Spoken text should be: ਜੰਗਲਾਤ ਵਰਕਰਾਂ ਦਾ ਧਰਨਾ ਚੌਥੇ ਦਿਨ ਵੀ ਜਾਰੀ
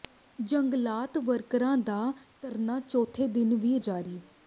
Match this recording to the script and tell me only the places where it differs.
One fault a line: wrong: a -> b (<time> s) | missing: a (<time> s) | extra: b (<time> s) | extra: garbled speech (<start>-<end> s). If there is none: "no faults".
no faults